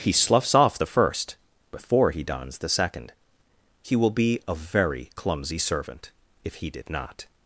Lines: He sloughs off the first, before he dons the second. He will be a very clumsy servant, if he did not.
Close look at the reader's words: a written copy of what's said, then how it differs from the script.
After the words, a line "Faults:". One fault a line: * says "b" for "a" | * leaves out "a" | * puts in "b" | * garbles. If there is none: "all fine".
He sloughs off the first, before he dons the second. He will be a very clumsy servant, if he did not.
Faults:
all fine